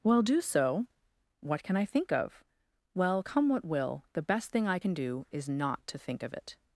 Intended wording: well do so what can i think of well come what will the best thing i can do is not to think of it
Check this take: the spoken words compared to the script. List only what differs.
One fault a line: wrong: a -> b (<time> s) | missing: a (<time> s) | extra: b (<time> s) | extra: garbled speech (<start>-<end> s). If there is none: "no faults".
no faults